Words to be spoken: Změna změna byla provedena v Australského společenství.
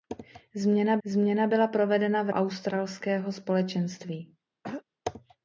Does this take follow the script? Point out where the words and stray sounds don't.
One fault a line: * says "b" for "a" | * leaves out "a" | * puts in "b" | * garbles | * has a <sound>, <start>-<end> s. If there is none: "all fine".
* has a throat clearing, 4.6-4.8 s